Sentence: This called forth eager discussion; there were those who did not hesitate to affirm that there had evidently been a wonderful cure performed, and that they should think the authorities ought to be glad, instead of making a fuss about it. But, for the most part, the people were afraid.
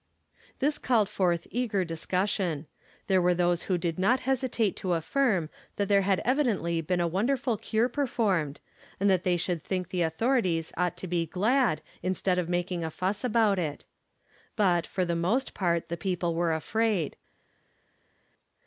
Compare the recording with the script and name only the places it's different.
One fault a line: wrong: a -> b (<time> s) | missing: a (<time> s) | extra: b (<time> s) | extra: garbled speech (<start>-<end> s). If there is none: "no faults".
no faults